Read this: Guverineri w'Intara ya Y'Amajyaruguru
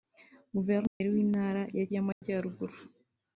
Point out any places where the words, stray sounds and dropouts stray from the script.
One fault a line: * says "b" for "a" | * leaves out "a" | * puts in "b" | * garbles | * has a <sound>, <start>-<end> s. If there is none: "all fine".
* has a dropout, 0.9-1.0 s
* has a dropout, 2.1-2.2 s